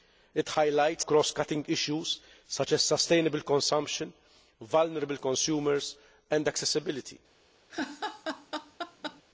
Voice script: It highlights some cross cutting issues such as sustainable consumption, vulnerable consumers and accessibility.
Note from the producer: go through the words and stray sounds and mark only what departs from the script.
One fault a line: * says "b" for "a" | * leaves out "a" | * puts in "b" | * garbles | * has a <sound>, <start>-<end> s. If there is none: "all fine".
* leaves out "some"
* has a laugh, 7.7-9.2 s